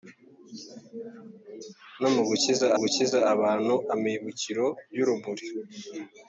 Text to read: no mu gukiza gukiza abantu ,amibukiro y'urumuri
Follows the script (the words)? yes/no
yes